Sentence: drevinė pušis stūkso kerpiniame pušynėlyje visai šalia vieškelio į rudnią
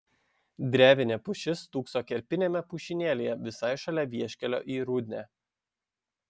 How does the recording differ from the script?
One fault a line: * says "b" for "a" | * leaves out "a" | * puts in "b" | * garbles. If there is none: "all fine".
all fine